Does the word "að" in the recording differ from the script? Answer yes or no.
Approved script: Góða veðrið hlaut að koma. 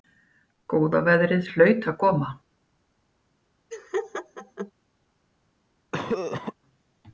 no